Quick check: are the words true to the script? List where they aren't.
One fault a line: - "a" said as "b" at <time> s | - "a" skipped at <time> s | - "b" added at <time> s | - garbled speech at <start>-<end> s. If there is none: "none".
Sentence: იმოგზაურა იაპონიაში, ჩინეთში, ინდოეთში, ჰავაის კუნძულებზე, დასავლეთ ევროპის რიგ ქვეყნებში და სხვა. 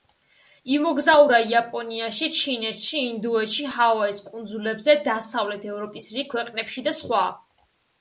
none